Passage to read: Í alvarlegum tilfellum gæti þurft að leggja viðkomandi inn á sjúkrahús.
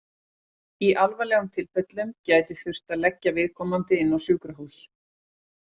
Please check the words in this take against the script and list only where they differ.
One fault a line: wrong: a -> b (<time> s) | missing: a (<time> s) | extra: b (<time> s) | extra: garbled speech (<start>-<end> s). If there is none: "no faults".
no faults